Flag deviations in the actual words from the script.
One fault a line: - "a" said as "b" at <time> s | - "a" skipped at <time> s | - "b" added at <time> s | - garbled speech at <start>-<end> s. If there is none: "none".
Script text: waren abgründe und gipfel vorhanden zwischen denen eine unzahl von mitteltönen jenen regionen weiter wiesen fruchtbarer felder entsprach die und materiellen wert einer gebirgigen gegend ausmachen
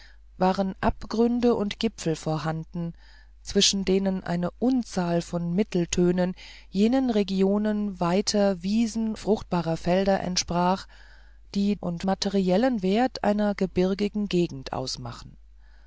none